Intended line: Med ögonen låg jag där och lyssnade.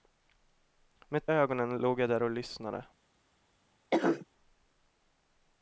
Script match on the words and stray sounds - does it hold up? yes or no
no